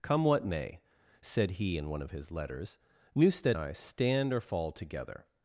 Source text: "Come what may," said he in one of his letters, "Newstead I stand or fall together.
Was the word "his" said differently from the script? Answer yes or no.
no